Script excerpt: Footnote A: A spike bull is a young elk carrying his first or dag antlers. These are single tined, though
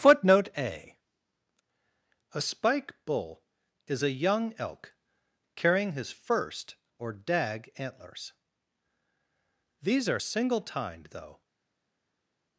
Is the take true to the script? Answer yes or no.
yes